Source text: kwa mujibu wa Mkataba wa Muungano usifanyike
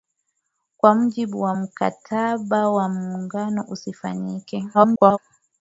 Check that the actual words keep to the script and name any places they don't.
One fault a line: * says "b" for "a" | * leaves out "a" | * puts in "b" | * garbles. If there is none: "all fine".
* garbles